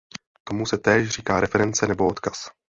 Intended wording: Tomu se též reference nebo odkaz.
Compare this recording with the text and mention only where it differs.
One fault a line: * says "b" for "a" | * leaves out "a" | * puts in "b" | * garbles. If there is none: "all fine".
* puts in "říká"